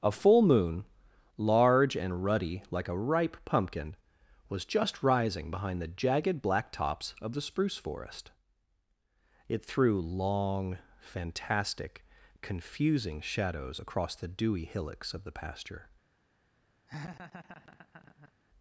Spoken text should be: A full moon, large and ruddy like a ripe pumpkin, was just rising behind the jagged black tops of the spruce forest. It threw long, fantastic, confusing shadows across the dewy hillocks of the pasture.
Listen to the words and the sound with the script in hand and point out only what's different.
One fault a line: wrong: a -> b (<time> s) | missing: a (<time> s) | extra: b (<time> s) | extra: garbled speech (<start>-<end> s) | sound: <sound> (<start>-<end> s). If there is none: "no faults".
sound: laugh (16.9-18.3 s)